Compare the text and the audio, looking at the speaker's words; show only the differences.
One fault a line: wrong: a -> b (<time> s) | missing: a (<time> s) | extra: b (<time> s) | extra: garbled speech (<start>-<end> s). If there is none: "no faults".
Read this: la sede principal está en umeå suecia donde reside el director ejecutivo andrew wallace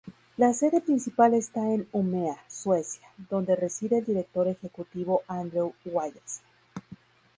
no faults